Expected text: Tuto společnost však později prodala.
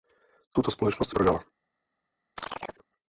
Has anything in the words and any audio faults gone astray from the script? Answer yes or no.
yes